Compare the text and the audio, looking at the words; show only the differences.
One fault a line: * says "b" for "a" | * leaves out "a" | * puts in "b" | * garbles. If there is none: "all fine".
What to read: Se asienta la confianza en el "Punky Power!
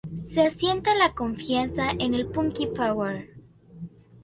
all fine